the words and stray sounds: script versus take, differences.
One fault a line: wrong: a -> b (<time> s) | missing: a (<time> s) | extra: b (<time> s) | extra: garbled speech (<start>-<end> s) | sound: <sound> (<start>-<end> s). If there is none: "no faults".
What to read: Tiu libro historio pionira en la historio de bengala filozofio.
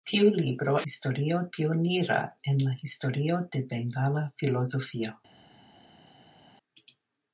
no faults